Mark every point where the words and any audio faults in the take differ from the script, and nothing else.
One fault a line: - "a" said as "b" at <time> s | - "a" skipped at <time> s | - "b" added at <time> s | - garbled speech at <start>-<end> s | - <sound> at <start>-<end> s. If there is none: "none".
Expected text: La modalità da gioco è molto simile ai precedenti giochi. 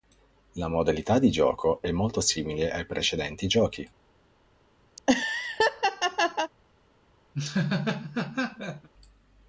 - "da" said as "di" at 1.2 s
- laugh at 5.0-6.5 s
- laugh at 7.3-8.9 s